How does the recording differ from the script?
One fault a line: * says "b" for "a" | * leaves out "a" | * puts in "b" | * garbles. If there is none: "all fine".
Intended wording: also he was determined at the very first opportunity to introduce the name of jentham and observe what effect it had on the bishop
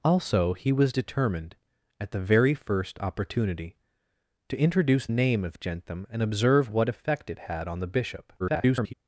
* leaves out "the"
* garbles